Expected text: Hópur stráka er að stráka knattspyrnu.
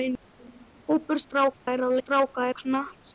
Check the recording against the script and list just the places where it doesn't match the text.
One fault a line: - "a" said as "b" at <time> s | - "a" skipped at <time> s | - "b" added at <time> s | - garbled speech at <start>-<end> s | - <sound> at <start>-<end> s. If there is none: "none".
- dropout at 1.5-1.7 s